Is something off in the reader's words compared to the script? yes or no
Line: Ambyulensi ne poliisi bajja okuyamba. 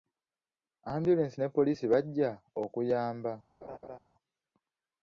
no